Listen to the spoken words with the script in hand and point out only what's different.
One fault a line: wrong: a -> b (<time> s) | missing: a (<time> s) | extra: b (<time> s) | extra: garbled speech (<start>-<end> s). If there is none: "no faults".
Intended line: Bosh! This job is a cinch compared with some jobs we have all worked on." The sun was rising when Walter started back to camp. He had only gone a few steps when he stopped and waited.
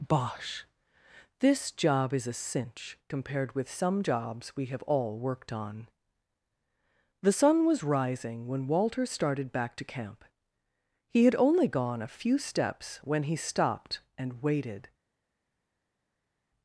no faults